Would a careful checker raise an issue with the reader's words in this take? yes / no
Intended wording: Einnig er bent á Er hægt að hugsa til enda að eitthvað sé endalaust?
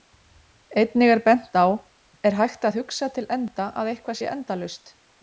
no